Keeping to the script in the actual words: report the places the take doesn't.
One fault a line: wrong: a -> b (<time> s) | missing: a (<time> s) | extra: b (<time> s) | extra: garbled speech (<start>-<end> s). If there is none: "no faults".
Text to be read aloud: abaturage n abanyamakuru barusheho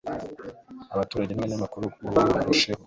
no faults